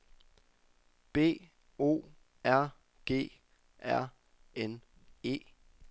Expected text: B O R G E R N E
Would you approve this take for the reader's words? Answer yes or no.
no